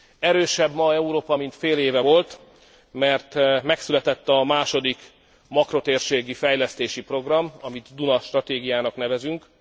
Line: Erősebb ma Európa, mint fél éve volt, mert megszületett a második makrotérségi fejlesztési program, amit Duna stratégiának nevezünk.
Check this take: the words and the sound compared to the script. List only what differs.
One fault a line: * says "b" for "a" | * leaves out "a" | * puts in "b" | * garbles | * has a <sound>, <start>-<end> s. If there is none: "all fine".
all fine